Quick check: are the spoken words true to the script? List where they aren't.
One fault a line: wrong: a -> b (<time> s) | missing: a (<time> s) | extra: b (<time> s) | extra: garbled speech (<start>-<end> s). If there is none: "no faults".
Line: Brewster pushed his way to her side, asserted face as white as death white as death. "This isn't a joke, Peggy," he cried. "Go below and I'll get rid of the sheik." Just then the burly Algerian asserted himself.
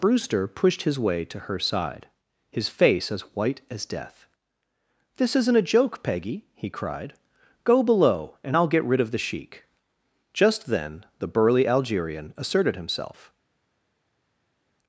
wrong: asserted -> his (2.5 s)
missing: white as death (4.3 s)